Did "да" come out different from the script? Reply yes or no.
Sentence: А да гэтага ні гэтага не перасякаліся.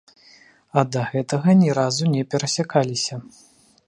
no